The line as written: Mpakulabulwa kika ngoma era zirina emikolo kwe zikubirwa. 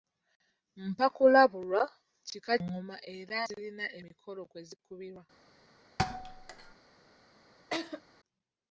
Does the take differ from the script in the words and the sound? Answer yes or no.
yes